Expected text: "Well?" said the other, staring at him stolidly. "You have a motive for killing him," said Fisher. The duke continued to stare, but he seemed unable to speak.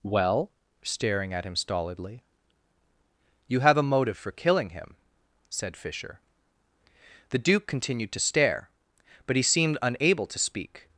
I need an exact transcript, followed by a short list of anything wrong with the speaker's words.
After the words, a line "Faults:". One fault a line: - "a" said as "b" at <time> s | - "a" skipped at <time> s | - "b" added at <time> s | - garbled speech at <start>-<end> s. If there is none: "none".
"Well?" staring at him stolidly. "You have a motive for killing him," said Fisher. The duke continued to stare, but he seemed unable to speak.
Faults:
- "said the other" skipped at 0.5 s